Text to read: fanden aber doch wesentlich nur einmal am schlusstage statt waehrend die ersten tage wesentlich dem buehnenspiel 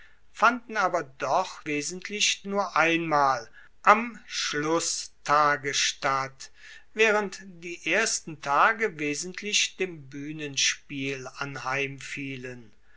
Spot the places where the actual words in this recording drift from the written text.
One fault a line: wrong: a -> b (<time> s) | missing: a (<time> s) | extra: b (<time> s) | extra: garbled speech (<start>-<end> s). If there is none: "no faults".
no faults